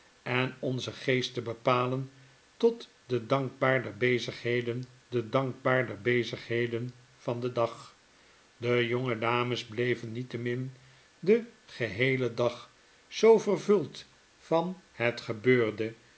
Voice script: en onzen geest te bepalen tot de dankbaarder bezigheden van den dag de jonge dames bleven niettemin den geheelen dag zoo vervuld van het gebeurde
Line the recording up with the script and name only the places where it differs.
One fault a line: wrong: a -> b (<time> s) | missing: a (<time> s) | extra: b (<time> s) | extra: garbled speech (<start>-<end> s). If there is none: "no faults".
extra: de dankbaarder bezigheden (5.1 s)